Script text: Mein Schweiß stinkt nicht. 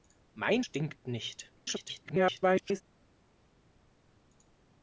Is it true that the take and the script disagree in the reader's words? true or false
true